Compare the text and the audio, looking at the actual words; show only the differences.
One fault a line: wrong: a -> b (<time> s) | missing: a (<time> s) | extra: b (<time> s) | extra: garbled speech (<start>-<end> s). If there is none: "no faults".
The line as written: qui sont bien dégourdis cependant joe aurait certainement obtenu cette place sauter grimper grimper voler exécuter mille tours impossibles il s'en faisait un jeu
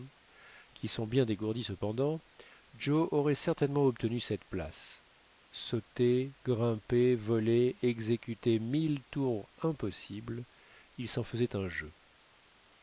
missing: grimper (7.1 s)